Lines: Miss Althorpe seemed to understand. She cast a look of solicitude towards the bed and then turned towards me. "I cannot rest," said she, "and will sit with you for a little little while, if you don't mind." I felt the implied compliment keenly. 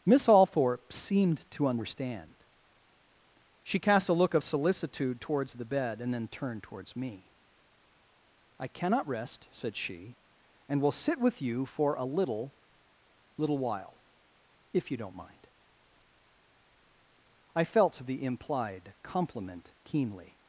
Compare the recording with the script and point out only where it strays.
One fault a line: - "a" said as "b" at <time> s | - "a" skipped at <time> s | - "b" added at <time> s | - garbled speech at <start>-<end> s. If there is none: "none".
none